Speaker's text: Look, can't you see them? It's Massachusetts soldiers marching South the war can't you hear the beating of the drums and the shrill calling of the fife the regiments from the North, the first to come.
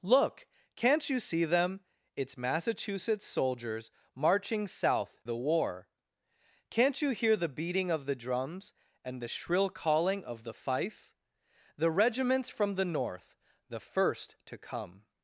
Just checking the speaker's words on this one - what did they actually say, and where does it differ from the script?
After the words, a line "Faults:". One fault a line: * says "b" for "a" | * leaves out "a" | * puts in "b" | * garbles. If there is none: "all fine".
Look, can't you see them? It's Massachusetts soldiers marching South the war can't you hear the beating of the drums and the shrill calling of the fife the regiments from the North, the first to come.
Faults:
all fine